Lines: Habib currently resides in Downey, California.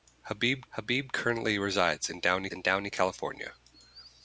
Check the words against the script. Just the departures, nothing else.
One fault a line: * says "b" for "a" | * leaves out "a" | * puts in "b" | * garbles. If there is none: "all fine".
* puts in "habib"
* puts in "in Downey"